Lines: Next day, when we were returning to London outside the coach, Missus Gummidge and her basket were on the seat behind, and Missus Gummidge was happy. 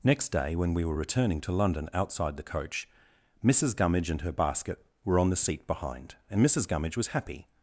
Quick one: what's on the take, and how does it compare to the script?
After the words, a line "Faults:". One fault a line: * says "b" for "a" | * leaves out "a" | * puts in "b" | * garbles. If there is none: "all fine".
Next day, when we were returning to London outside the coach, Missus Gummidge and her basket were on the seat behind, and Missus Gummidge was happy.
Faults:
all fine